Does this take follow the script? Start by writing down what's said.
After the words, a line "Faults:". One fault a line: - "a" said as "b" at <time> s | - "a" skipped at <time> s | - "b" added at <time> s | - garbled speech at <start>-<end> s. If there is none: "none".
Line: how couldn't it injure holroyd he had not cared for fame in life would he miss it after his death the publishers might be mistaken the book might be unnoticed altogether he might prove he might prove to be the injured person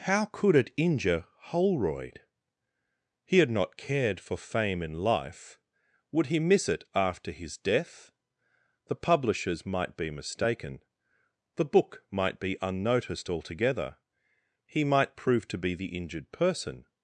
how could it injure holroyd he had not cared for fame in life would he miss it after his death the publishers might be mistaken the book might be unnoticed altogether he might prove to be the injured person
Faults:
- "couldn't" said as "could" at 0.2 s
- "he might prove" skipped at 15.5 s